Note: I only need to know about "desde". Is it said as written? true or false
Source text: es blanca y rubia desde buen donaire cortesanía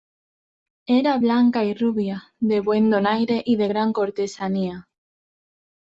false